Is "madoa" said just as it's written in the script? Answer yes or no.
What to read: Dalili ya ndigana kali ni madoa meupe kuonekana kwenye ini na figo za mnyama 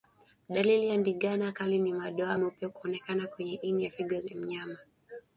yes